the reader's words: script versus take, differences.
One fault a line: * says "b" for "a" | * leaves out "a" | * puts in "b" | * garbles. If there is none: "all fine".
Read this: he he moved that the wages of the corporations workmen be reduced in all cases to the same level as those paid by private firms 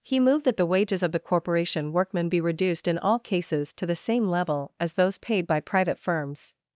* leaves out "he"
* says "corporation" for "corporations"